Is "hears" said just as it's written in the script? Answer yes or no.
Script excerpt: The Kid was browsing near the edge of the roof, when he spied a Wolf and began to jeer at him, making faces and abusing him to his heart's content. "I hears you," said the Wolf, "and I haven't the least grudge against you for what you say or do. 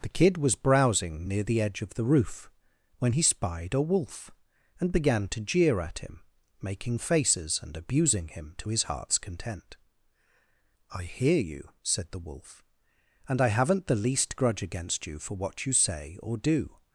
no